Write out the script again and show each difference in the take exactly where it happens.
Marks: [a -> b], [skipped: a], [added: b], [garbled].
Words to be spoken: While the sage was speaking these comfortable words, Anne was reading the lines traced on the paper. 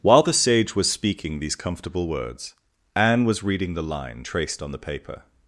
While the sage was speaking these comfortable words, Anne was reading the [lines -> line] traced on the paper.